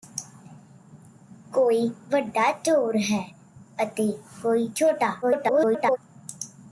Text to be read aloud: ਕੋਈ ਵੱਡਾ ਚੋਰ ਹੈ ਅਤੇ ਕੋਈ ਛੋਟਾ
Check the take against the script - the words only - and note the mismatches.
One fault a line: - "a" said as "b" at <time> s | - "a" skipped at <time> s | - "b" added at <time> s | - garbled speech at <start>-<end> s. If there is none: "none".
- garbled speech at 5.2-6.0 s